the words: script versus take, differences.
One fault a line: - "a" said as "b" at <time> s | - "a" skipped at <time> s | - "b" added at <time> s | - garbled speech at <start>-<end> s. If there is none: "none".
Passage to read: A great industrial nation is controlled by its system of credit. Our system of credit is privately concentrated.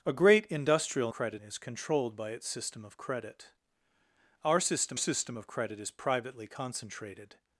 - "nation" said as "credit" at 1.1 s
- "system" added at 5.0 s